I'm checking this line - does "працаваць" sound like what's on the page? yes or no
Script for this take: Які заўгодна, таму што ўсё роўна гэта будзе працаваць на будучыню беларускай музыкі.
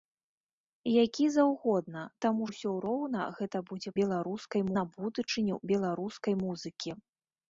no